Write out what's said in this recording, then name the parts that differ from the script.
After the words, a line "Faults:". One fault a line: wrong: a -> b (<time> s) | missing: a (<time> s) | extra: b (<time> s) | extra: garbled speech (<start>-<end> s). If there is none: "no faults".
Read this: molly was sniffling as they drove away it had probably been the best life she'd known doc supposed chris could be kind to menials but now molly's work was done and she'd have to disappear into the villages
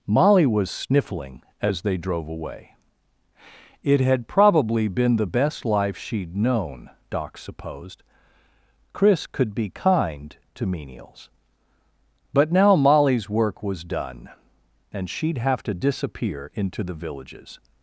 molly was sniffling as they drove away it had probably been the best life she'd known doc supposed chris could be kind to menials but now molly's work was done and she'd have to disappear into the villages
Faults:
no faults